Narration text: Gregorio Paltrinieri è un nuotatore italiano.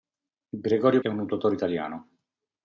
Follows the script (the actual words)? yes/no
no